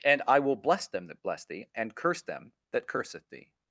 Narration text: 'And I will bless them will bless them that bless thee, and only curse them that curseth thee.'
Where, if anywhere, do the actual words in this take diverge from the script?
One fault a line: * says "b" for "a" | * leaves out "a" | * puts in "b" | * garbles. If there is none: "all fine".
* leaves out "will bless them"
* leaves out "only"